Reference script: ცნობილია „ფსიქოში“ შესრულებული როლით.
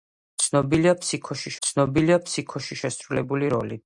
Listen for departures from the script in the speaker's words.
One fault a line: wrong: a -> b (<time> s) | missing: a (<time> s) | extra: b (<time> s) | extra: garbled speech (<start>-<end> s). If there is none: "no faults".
extra: ცნობილია ფსიქოში (1.7 s)